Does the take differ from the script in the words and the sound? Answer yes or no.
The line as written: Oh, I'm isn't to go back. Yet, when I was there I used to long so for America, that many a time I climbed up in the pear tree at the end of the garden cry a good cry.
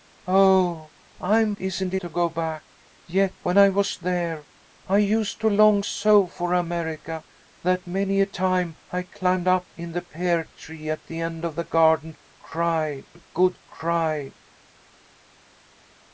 no